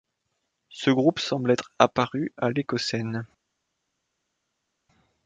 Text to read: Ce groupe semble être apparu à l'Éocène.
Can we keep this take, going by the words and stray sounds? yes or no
yes